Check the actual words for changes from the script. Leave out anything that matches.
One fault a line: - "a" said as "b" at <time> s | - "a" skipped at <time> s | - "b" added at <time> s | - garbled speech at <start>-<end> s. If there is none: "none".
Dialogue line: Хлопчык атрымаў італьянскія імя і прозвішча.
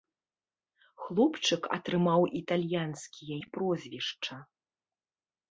- "імя" skipped at 3.4 s